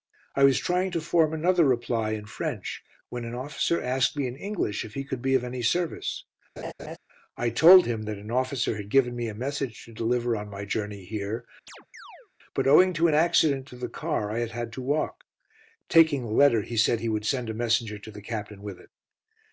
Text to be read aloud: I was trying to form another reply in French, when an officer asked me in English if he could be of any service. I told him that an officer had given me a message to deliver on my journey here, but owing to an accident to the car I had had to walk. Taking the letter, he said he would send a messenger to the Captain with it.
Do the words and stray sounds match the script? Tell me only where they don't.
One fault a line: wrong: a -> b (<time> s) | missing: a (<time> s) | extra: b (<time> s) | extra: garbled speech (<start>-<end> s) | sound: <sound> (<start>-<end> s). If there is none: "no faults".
sound: laugh (6.6-7.0 s)
sound: chirp (11.7-12.3 s)